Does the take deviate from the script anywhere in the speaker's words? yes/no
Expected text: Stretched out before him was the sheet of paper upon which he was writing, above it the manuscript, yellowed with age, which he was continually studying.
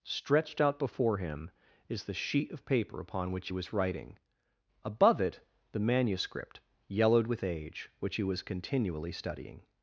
yes